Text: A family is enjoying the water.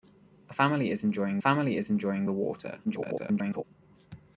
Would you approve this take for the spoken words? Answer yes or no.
no